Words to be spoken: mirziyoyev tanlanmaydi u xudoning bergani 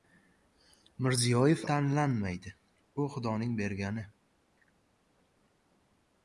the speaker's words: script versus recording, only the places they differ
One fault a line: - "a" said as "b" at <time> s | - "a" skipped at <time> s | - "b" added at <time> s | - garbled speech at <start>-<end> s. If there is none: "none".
none